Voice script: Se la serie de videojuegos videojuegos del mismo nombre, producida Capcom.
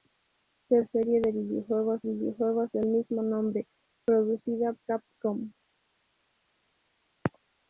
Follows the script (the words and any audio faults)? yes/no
yes